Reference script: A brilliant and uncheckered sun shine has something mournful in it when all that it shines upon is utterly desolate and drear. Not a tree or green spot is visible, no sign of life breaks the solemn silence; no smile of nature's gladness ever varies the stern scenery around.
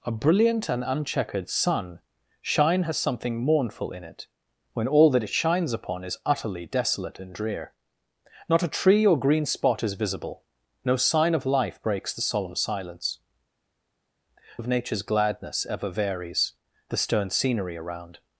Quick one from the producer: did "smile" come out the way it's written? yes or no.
no